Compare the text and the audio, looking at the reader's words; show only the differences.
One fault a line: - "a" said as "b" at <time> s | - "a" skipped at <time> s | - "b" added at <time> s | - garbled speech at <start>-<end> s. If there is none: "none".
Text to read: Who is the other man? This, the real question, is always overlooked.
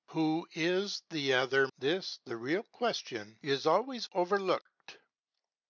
- "man" skipped at 1.7 s